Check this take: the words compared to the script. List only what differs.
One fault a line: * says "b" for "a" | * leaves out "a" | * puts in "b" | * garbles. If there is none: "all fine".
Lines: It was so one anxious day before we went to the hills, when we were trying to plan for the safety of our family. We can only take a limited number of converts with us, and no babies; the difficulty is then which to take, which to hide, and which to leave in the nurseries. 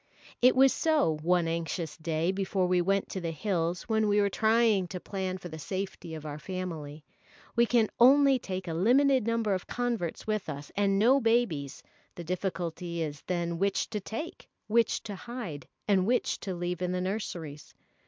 all fine